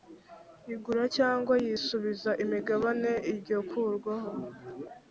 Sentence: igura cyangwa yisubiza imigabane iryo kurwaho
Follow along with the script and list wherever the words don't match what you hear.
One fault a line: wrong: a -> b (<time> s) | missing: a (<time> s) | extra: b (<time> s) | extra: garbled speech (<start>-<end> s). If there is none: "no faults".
no faults